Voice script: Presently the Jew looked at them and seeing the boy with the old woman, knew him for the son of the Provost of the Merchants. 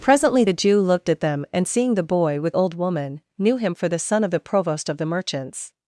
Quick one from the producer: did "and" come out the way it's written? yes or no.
yes